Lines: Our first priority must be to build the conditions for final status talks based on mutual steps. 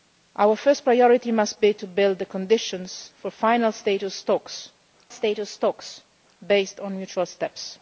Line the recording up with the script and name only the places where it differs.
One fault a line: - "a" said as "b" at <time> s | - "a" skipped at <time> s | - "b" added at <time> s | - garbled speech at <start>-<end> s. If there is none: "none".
- "status talks" added at 5.1 s